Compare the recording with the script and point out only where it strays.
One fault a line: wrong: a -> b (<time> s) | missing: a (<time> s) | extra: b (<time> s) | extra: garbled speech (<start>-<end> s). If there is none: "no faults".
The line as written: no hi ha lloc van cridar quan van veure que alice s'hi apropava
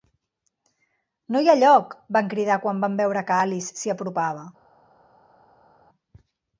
no faults